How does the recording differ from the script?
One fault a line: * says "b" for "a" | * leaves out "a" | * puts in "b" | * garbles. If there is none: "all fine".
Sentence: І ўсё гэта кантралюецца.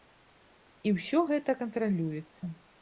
all fine